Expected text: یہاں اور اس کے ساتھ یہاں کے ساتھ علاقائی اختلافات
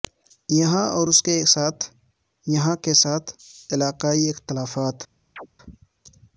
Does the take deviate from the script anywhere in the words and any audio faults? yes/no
yes